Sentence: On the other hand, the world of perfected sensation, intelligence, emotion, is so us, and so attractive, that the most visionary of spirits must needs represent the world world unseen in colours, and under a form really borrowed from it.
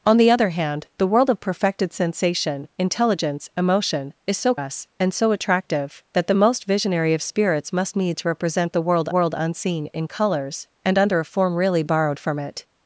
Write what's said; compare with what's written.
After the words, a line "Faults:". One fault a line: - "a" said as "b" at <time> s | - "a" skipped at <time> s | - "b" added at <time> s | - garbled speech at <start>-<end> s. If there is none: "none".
On the other hand, the world of perfected sensation, intelligence, emotion, is so us, and so attractive, that the most visionary of spirits must needs represent the world world unseen in colours, and under a form really borrowed from it.
Faults:
none